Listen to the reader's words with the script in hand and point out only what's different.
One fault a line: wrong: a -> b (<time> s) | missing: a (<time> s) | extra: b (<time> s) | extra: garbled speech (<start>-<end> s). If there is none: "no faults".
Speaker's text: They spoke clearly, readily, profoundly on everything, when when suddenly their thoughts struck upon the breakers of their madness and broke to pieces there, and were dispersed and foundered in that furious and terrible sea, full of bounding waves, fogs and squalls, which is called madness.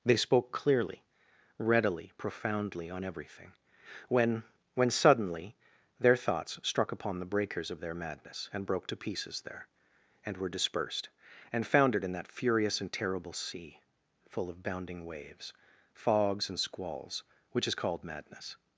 no faults